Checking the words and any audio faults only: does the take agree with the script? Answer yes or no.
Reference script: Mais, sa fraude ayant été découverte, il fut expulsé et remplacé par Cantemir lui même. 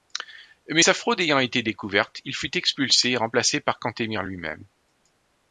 yes